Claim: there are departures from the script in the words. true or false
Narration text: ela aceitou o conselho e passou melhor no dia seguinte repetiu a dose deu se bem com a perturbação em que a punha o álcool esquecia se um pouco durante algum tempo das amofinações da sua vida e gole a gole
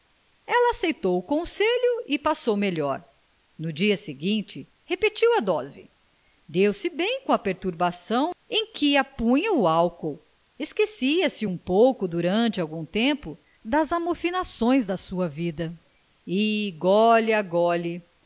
false